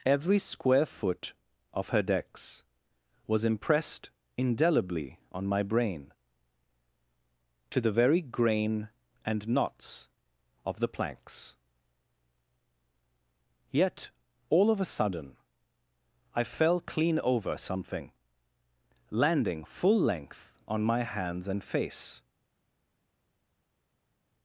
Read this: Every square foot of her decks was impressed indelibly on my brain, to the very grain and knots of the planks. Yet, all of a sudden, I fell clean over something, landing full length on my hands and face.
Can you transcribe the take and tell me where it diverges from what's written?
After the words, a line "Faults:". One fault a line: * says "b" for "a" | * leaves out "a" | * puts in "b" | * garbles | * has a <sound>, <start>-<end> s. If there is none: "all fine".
Every square foot of her decks was impressed indelibly on my brain, to the very grain and knots of the planks. Yet, all of a sudden, I fell clean over something, landing full length on my hands and face.
Faults:
all fine